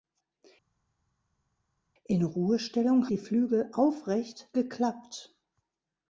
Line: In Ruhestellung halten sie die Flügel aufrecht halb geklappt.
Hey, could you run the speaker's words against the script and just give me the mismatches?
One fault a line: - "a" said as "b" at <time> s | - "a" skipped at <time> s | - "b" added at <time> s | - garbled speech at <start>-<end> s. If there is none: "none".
- "halten sie" skipped at 3.1 s
- "halb" skipped at 4.5 s